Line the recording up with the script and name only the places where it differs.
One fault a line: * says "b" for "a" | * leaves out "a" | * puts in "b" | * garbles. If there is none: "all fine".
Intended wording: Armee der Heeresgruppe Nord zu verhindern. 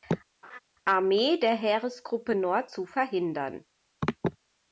all fine